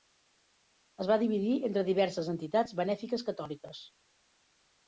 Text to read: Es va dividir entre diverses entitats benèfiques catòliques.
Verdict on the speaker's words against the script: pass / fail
pass